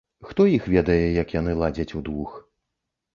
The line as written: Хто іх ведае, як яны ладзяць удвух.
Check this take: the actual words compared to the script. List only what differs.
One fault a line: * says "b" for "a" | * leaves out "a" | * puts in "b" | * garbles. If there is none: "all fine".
all fine